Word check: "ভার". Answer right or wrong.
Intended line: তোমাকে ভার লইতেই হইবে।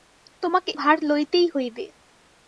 right